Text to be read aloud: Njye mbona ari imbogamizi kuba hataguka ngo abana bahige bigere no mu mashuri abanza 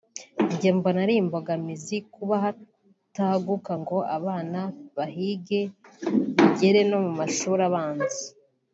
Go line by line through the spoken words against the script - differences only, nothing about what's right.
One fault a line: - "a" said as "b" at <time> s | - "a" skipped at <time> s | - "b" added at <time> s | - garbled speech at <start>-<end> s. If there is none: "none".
none